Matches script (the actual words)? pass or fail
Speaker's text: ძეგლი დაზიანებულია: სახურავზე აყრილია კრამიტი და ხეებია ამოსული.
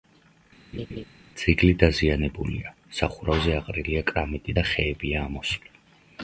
pass